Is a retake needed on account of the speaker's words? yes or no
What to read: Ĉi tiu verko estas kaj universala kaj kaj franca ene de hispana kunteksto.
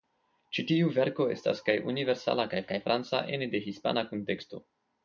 no